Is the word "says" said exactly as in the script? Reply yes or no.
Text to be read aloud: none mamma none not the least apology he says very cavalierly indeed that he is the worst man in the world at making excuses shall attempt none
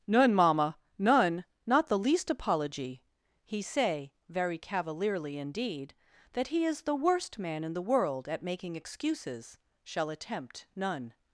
no